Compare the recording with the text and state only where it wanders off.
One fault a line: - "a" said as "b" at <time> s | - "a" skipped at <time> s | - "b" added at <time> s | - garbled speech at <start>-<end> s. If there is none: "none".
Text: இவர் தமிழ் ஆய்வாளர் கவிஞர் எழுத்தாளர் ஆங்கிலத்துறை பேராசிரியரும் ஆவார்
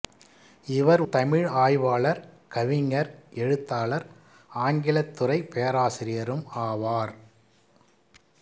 none